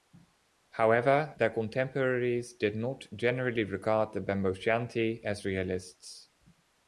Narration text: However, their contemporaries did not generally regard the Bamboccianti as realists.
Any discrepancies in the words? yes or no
no